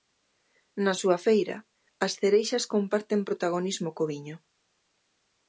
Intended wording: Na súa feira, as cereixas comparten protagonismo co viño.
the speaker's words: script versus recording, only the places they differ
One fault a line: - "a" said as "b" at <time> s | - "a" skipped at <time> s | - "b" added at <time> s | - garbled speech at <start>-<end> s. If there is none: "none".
none